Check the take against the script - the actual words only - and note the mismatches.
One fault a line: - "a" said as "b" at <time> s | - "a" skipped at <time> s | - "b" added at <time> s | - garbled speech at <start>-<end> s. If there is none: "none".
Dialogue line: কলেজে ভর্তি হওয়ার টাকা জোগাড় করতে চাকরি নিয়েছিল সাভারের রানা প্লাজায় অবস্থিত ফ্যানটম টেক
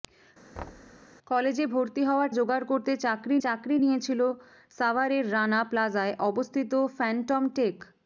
- "টাকা" skipped at 2.3 s
- "চাকরি" added at 3.4 s